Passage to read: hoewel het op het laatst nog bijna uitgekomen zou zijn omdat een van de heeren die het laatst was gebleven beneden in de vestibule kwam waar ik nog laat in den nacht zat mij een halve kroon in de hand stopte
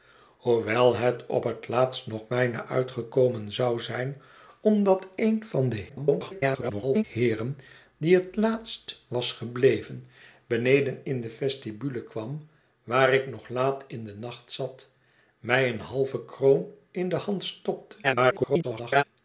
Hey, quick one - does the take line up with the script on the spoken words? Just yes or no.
no